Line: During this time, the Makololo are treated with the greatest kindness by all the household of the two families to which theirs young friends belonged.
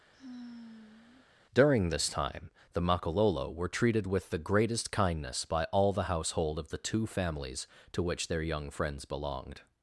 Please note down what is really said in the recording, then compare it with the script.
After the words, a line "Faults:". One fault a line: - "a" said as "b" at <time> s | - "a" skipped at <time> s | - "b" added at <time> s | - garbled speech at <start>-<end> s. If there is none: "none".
During this time, the Makololo were treated with the greatest kindness by all the household of the two families to which their young friends belonged.
Faults:
- "are" said as "were" at 3.5 s
- "theirs" said as "their" at 8.3 s